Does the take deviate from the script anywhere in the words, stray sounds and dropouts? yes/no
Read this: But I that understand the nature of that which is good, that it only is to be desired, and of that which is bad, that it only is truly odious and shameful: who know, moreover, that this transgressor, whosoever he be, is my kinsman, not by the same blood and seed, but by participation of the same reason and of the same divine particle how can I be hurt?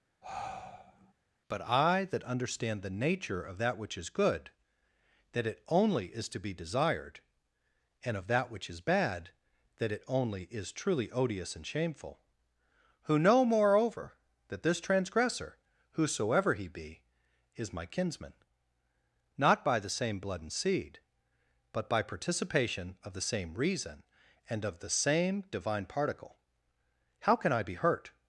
yes